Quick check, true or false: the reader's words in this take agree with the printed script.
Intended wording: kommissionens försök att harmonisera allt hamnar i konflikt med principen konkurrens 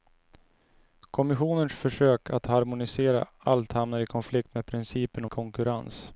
true